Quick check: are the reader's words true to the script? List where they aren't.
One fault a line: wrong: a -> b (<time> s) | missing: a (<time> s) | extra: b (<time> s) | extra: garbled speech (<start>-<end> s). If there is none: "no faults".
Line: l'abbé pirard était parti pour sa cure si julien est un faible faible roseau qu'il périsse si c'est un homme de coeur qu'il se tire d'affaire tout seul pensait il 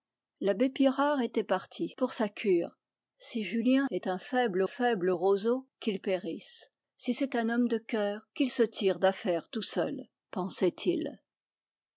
no faults